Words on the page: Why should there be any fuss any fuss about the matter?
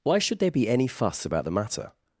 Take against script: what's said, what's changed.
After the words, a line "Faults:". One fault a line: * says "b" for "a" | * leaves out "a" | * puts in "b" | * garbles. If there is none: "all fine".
Why should there be any fuss about the matter?
Faults:
* leaves out "any fuss"